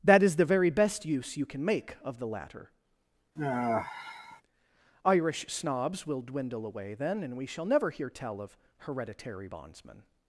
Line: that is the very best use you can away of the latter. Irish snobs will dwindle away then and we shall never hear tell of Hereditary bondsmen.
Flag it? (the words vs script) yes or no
yes